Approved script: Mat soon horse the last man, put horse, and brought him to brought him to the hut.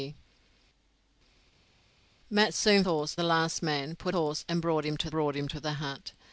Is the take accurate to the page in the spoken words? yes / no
yes